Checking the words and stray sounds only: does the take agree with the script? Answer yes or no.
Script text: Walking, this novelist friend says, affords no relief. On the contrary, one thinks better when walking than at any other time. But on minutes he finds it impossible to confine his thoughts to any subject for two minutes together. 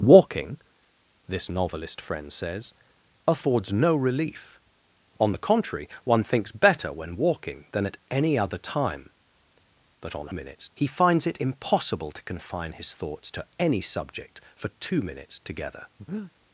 no